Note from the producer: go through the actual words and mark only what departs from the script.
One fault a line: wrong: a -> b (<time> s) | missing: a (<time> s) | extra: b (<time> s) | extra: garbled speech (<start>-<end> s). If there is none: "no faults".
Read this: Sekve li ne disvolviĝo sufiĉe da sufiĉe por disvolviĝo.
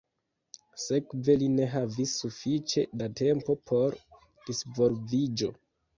wrong: disvolviĝo -> havis (1.7 s)
wrong: sufiĉe -> tempo (3.2 s)